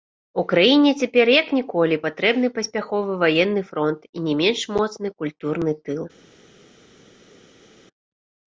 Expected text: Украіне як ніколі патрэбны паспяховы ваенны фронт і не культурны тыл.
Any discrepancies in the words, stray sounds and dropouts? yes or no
yes